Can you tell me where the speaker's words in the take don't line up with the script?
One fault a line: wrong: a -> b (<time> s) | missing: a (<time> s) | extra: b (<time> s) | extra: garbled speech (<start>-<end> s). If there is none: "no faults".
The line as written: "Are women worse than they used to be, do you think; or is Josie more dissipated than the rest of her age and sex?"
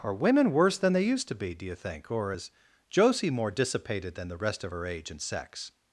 no faults